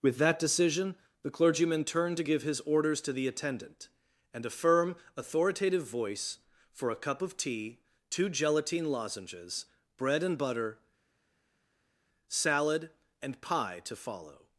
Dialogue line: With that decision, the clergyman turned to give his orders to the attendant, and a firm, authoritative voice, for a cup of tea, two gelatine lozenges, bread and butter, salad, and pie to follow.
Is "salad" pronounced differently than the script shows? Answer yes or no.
no